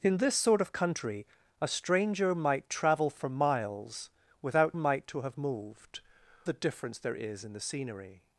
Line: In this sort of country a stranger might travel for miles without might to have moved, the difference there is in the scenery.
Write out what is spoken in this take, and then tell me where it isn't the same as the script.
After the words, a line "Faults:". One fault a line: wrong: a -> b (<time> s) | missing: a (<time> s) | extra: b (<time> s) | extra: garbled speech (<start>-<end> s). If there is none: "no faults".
In this sort of country a stranger might travel for miles without might to have moved, the difference there is in the scenery.
Faults:
no faults